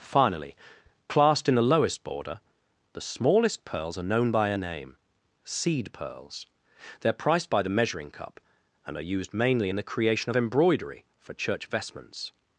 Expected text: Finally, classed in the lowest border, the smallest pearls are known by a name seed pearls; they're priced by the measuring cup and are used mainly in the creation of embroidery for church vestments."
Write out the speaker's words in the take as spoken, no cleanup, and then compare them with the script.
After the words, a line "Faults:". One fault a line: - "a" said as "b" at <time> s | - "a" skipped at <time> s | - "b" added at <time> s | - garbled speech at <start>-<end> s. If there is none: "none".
Finally, classed in the lowest border, the smallest pearls are known by a name seed pearls; they're priced by the measuring cup and are used mainly in the creation of embroidery for church vestments."
Faults:
none